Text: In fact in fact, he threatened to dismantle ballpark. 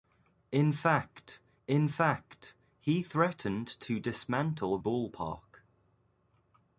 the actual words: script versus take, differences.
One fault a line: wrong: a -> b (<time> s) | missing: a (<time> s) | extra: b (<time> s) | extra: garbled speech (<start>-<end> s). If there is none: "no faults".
no faults